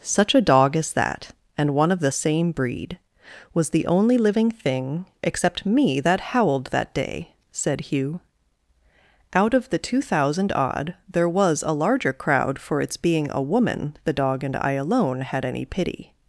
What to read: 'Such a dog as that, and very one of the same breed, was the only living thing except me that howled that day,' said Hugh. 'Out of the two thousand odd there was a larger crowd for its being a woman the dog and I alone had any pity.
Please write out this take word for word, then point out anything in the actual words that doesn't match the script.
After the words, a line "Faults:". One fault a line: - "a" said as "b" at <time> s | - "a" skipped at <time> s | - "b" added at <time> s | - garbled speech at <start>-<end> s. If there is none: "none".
'Such a dog as that, and one of the same breed, was the only living thing except me that howled that day,' said Hugh. 'Out of the two thousand odd there was a larger crowd for its being a woman the dog and I alone had any pity.
Faults:
- "very" skipped at 1.8 s